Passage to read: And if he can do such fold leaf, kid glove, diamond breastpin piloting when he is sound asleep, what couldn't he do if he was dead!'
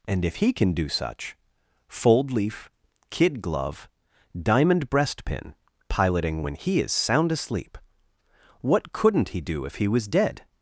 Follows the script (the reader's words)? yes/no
yes